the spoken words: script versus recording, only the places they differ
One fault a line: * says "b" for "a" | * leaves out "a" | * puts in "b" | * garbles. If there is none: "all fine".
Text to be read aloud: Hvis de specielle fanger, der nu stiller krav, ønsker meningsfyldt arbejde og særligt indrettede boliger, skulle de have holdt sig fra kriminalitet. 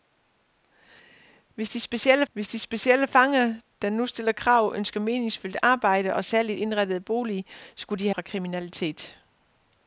* puts in "hvis de specielle"
* leaves out "have holdt sig"